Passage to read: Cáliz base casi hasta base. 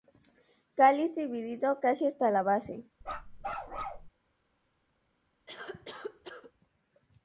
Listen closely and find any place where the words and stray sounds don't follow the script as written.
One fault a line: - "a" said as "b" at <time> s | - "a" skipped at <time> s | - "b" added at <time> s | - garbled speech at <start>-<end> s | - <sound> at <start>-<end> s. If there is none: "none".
- "base" said as "dividido" at 1.1 s
- "la" added at 2.3 s
- bark at 3.0-4.1 s
- cough at 5.5-6.5 s